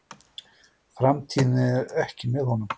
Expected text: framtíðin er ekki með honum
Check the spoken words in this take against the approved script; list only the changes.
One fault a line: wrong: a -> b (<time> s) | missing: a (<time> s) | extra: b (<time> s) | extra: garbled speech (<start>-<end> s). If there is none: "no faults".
no faults